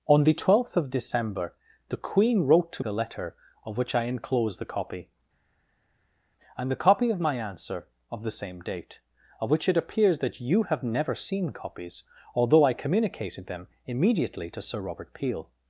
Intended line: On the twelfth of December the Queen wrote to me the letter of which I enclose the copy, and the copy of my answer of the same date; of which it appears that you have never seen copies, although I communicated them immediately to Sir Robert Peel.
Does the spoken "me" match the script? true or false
false